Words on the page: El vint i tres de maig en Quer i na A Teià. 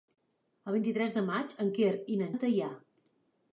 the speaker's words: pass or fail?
pass